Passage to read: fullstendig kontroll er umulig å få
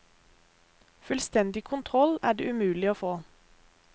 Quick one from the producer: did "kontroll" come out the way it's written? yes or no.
yes